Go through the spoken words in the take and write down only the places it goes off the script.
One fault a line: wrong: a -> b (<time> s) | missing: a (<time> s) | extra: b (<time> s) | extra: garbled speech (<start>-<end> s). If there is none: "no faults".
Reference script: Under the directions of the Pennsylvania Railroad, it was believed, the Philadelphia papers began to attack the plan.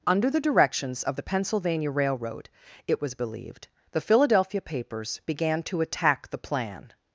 no faults